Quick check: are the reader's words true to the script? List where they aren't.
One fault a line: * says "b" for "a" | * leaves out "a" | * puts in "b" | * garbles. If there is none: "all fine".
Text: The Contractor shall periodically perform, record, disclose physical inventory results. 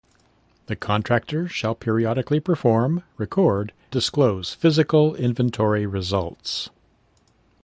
all fine